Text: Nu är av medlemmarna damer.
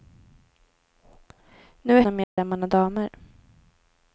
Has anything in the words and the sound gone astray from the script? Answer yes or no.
yes